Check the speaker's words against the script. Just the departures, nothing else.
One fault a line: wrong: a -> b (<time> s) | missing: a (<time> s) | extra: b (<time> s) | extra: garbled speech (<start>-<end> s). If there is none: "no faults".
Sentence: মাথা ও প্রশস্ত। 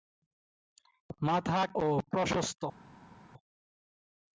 no faults